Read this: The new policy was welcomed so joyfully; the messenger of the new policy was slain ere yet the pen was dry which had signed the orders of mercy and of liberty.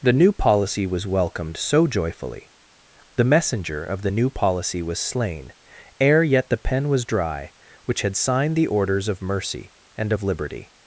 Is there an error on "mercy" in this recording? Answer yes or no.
no